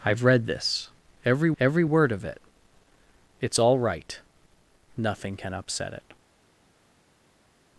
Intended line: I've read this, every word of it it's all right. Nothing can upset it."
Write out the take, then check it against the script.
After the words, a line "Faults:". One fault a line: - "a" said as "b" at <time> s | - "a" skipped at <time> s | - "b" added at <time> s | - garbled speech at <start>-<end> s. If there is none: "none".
I've read this, every every word of it it's all right. Nothing can upset it."
Faults:
- "every" added at 1.6 s